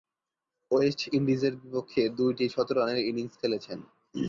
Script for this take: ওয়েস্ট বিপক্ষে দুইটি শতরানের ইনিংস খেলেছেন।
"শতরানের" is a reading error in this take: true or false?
false